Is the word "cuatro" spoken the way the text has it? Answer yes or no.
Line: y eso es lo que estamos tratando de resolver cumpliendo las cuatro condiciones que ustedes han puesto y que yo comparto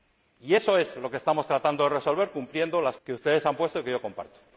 no